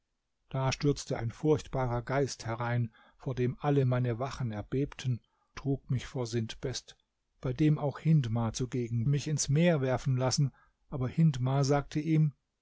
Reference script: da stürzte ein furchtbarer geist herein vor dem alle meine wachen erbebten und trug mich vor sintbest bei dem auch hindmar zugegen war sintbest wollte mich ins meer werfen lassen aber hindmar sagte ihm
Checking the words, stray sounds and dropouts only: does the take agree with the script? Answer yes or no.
no